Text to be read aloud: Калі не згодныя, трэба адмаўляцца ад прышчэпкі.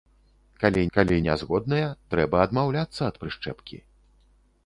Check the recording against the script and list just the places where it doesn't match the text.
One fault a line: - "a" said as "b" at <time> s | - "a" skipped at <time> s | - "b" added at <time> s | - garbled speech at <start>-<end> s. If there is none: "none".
- "калі" added at 1.0 s